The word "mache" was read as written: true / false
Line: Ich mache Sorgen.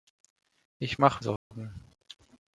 true